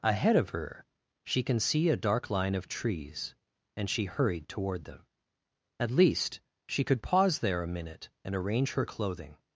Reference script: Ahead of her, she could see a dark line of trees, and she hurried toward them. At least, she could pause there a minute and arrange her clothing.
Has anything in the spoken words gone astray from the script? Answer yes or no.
yes